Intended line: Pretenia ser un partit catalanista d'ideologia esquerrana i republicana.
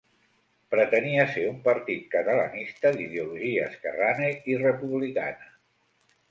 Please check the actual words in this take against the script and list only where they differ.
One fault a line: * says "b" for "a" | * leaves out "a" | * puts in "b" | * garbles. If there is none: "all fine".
all fine